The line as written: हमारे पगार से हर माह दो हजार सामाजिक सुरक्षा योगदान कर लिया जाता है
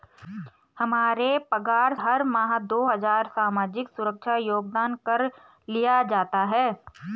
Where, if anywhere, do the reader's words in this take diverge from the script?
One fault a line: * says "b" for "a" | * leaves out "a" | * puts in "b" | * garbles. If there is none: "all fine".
* leaves out "से"